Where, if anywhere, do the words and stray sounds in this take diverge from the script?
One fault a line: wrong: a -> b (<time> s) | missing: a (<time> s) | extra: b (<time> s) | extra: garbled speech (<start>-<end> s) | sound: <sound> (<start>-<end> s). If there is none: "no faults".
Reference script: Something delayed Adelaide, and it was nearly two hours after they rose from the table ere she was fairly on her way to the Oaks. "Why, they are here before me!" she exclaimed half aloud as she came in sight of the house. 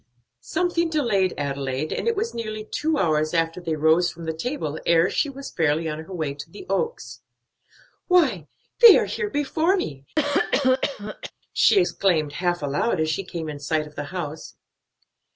sound: cough (10.2-11.3 s)